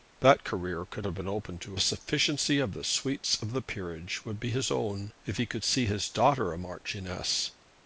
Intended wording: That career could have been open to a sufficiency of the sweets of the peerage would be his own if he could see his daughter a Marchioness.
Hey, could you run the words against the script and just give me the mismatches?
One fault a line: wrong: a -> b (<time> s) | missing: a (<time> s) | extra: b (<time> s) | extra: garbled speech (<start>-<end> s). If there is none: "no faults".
no faults